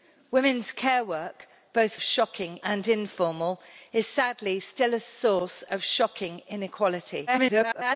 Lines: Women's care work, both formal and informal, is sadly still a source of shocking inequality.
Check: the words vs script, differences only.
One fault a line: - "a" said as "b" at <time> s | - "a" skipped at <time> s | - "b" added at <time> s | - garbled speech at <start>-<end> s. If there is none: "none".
- "formal" said as "shocking" at 2.0 s
- garbled speech at 7.3-8.0 s